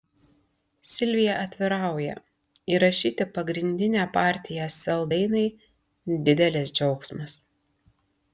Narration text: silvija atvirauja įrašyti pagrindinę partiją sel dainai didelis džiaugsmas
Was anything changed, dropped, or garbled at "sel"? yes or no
no